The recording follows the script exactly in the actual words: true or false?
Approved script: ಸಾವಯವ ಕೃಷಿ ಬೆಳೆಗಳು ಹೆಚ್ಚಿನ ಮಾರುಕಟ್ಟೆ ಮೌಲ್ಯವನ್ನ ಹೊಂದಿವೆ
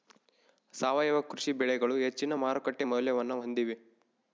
true